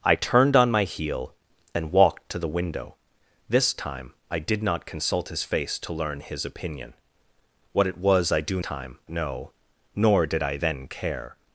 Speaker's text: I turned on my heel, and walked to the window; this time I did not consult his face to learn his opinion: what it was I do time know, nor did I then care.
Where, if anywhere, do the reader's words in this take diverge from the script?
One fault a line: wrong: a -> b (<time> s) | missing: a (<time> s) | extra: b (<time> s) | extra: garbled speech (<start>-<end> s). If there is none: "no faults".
no faults